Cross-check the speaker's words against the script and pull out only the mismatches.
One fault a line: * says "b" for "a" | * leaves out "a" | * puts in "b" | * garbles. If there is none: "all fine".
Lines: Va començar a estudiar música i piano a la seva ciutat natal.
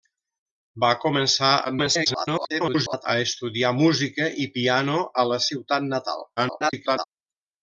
* garbles
* leaves out "seva"
* garbles